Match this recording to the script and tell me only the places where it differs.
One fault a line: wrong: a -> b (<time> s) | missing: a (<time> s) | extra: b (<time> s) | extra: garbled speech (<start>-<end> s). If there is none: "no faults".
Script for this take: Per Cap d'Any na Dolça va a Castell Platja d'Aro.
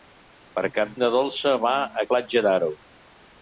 missing: d'Any (0.9 s)
missing: Castell (2.1 s)